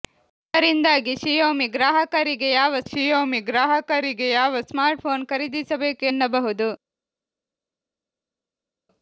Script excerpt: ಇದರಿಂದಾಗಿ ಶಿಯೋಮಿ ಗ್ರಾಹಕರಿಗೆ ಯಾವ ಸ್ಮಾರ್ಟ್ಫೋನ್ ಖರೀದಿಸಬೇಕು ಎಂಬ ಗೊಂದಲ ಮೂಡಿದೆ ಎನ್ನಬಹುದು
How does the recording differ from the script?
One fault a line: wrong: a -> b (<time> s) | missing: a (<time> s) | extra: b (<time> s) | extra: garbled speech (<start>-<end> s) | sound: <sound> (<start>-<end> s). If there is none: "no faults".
wrong: ಸ್ಮಾರ್ಟ್ಫೋನ್ ಖರೀದಿಸಬೇಕು ಎಂಬ ಗೊಂದಲ ಮೂಡಿದೆ -> ಶಿಯೋಮಿ ಗ್ರಾಹಕರಿಗೆ ಯಾವ ಸ್ಮಾರ್ಟ್ಫೋನ್ ಖರೀದಿಸಬೇಕು (2.8 s)